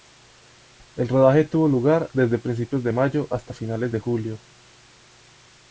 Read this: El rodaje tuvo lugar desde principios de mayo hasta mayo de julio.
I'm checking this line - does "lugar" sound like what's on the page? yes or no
yes